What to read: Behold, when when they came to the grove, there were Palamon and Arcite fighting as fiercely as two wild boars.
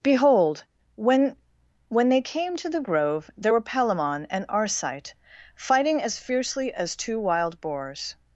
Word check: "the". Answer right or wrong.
right